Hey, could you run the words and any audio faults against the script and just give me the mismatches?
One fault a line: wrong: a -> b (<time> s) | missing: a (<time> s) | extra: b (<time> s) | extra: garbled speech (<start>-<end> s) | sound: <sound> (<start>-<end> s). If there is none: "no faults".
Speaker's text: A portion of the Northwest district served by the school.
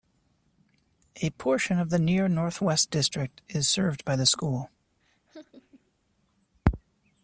extra: Near (2.0 s)
extra: is (3.5 s)
sound: laugh (5.0-5.9 s)